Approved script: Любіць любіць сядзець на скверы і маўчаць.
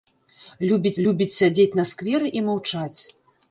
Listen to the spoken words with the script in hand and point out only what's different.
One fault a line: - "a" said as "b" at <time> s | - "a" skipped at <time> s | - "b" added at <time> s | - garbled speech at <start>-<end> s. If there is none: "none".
none